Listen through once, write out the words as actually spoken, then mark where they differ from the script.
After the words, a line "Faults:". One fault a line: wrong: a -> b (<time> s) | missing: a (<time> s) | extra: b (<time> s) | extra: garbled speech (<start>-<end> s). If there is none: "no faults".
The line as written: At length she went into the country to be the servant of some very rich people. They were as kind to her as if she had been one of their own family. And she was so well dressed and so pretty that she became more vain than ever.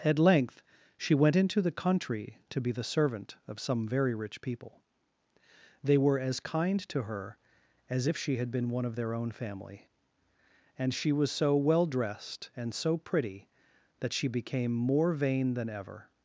At length she went into the country to be the servant of some very rich people. They were as kind to her as if she had been one of their own family. And she was so well dressed and so pretty that she became more vain than ever.
Faults:
no faults